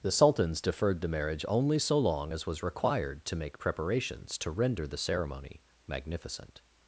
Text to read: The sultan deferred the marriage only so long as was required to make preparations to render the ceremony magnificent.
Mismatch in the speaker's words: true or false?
true